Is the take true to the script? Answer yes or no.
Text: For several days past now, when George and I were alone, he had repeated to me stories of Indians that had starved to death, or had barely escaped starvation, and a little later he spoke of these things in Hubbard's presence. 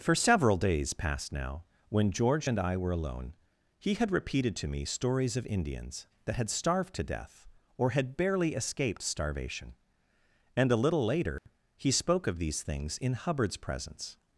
yes